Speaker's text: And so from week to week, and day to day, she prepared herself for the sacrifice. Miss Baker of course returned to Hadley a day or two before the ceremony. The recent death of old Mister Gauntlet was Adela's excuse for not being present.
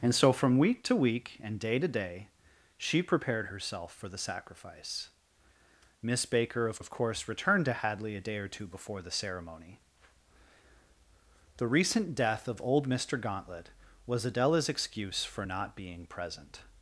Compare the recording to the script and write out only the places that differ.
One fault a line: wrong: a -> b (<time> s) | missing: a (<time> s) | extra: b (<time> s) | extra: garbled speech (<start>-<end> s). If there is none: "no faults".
extra: of (6.8 s)